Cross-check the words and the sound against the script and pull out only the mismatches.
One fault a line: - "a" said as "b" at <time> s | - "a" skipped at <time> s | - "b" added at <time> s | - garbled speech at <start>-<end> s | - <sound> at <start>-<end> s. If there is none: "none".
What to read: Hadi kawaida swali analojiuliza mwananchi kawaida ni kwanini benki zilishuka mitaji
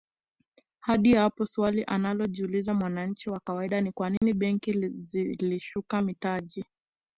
- "kawaida" said as "hapo" at 1.1 s
- "wa" added at 3.3 s
- dropout at 4.2-4.2 s